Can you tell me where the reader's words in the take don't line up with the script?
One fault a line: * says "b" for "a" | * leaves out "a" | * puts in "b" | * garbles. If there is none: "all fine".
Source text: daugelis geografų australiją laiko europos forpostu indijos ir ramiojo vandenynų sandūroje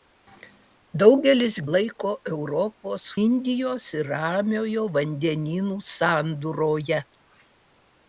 * leaves out "geografų australiją"
* leaves out "forpostu"